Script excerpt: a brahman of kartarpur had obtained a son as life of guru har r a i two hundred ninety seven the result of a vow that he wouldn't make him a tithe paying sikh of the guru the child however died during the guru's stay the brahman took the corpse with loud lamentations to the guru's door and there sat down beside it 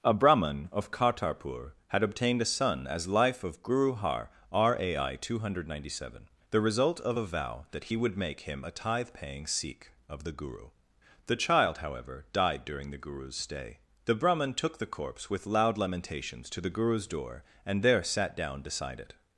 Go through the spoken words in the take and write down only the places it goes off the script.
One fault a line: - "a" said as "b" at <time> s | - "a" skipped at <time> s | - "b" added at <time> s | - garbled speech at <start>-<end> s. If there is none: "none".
- "wouldn't" said as "would" at 8.0 s